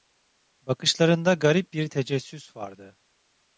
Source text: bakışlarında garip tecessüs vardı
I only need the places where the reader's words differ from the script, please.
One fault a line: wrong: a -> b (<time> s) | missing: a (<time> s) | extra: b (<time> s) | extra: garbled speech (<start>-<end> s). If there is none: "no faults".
extra: bir (1.7 s)